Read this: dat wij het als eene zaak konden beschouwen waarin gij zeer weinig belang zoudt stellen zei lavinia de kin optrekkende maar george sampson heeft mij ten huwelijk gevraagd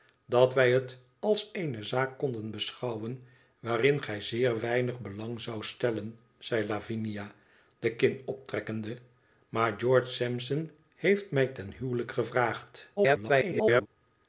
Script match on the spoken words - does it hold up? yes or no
no